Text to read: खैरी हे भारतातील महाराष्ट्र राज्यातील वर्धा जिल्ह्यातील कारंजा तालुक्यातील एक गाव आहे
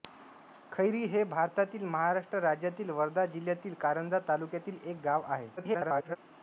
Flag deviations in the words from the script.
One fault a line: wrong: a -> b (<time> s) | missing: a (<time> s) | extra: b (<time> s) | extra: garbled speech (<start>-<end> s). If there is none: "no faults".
extra: garbled speech (5.6-6.2 s)